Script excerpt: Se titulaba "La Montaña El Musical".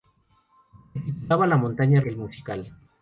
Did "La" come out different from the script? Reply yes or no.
no